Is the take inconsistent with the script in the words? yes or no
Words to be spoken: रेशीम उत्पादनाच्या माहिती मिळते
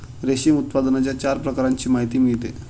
yes